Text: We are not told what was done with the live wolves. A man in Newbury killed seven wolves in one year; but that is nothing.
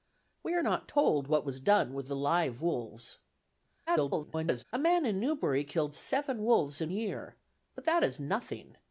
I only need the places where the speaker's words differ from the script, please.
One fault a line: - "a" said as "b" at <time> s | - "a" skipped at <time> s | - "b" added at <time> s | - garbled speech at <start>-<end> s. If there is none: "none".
- garbled speech at 3.9-4.6 s
- "one" skipped at 6.9 s